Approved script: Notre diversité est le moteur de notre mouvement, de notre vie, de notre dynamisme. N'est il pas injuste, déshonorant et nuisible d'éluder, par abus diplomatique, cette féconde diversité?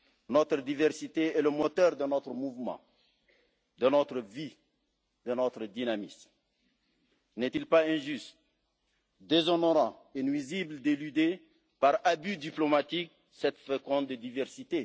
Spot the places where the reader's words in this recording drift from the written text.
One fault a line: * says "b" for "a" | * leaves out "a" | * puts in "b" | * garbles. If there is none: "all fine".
all fine